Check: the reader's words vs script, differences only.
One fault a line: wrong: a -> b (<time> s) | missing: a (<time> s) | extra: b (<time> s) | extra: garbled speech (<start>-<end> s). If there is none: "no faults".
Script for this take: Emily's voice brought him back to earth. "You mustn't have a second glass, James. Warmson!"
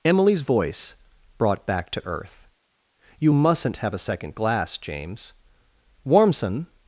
missing: him (1.7 s)